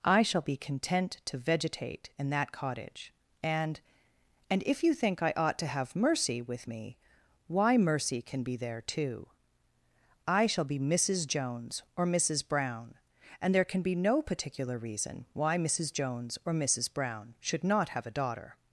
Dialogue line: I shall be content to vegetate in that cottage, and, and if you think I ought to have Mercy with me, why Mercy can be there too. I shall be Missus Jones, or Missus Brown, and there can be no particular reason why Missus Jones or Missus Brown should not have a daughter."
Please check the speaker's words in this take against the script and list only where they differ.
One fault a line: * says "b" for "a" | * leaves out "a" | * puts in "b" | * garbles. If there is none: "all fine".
all fine